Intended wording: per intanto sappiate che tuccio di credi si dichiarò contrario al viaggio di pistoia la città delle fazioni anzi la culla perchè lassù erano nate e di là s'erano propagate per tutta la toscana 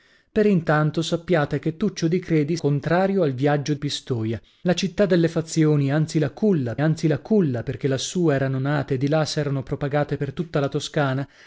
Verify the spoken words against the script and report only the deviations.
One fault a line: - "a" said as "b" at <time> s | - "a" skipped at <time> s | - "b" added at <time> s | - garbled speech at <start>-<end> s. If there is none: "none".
- "si dichiarò" skipped at 2.5 s
- "di" skipped at 3.7 s
- "anzi la culla" added at 6.8 s